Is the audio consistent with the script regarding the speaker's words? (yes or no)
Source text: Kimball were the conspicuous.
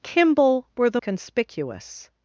yes